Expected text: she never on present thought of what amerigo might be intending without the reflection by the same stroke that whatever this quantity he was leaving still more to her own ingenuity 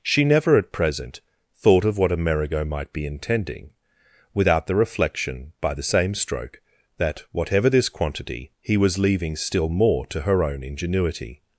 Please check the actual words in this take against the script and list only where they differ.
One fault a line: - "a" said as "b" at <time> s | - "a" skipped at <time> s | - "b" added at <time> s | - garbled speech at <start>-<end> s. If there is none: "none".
- "on" said as "at" at 0.6 s